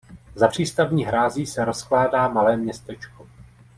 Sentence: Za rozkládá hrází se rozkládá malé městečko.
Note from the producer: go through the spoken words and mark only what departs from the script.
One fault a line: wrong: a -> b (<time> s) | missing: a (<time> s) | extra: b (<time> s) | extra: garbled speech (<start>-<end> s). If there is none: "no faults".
wrong: rozkládá -> přístavní (0.4 s)